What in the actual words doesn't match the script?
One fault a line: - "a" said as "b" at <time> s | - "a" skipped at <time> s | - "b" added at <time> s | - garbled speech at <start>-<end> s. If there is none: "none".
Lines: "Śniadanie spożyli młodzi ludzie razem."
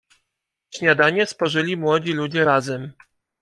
none